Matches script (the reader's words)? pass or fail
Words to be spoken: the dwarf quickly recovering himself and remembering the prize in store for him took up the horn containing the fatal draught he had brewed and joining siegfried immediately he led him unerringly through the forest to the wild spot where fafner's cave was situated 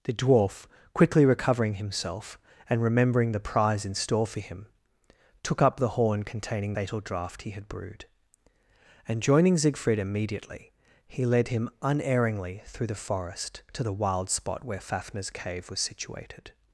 fail